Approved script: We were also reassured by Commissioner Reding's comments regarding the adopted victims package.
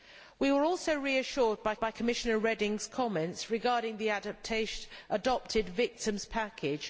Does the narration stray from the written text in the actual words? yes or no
yes